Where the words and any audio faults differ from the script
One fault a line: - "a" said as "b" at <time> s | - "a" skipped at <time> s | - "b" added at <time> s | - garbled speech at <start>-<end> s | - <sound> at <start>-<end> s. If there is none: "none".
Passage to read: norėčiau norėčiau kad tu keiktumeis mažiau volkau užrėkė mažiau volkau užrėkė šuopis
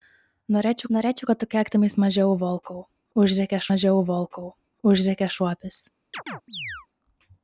- chirp at 6.1-6.9 s